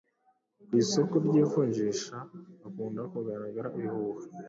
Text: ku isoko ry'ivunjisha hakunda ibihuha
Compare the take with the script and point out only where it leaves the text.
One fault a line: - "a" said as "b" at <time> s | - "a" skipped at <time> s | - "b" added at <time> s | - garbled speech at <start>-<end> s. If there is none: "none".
- "kugaragara" added at 3.1 s